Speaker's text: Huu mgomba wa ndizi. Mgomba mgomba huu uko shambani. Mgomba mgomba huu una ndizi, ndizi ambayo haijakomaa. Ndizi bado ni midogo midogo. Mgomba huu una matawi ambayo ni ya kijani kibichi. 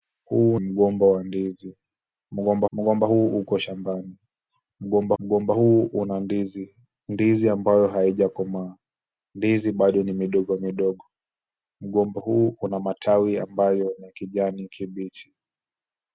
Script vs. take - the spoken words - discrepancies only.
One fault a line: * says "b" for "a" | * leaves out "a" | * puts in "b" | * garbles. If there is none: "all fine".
all fine